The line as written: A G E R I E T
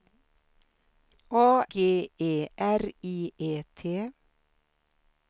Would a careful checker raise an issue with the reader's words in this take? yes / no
no